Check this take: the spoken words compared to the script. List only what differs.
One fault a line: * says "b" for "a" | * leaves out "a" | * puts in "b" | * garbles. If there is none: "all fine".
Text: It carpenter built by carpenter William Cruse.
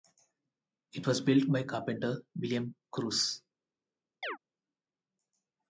* says "was" for "carpenter"